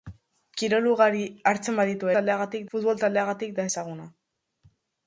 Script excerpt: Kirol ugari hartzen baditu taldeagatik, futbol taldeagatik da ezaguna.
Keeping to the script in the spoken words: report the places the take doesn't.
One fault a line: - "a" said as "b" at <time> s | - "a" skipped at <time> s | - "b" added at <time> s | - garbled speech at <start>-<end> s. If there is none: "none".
none